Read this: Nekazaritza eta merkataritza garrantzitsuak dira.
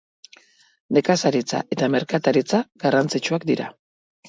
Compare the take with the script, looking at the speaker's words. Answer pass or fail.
pass